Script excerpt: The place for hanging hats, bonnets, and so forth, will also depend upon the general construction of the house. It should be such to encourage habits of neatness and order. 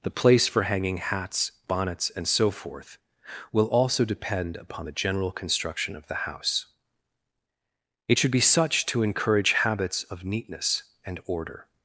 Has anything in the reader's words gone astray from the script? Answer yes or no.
no